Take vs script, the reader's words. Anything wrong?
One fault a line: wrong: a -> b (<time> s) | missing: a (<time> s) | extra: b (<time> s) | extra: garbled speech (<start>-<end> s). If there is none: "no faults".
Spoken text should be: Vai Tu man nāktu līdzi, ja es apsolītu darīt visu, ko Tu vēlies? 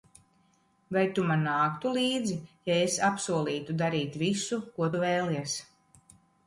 no faults